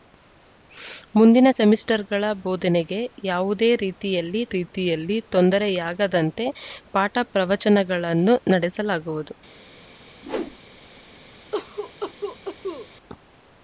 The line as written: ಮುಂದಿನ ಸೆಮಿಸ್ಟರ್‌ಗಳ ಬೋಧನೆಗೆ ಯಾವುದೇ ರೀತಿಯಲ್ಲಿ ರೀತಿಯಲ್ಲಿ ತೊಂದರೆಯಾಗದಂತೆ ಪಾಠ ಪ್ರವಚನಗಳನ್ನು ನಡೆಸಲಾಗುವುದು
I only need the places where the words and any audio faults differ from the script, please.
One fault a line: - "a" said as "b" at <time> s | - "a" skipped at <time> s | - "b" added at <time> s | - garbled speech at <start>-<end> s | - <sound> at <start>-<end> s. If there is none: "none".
- whoosh at 10.2-10.6 s
- cough at 11.5-12.9 s